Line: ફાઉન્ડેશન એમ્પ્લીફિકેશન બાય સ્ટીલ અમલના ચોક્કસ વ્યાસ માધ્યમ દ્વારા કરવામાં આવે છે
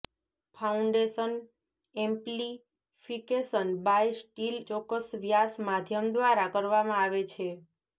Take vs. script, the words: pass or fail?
fail